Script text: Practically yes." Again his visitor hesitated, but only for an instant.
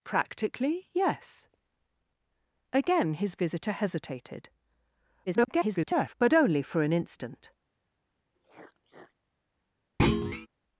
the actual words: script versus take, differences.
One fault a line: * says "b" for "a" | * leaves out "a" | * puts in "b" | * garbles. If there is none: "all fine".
* garbles